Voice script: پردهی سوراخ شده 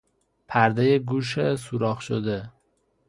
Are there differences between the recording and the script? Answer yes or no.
yes